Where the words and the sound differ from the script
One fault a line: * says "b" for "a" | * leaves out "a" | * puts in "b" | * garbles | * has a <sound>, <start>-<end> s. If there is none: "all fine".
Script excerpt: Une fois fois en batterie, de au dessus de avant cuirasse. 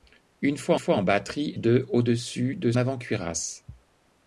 all fine